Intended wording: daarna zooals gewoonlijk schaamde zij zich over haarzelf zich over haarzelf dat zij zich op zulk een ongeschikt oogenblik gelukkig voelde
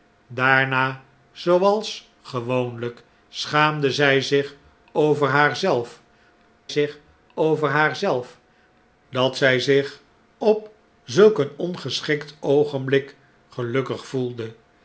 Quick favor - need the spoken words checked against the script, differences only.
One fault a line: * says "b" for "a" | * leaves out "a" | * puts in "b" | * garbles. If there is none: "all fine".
all fine